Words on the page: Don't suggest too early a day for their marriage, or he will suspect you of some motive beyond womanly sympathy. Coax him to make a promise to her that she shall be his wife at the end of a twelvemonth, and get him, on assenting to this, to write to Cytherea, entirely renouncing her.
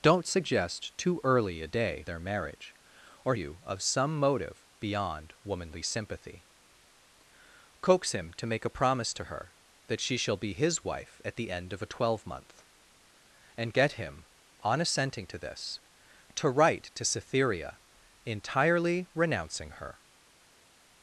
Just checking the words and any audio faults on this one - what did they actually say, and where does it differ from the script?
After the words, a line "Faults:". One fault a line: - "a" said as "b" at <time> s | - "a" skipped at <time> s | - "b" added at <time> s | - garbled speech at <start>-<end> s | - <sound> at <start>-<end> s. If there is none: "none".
Don't suggest too early a day their marriage, or you of some motive beyond womanly sympathy. Coax him to make a promise to her that she shall be his wife at the end of a twelvemonth, and get him, on assenting to this, to write to Cytherea, entirely renouncing her.
Faults:
- "for" skipped at 2.0 s
- "he will suspect" skipped at 3.3 s